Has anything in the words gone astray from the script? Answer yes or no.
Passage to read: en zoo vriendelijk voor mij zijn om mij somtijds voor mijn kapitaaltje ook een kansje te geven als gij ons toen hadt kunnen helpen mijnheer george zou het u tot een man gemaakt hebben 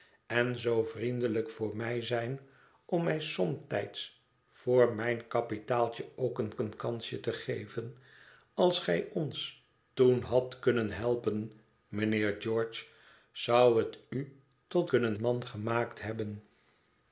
yes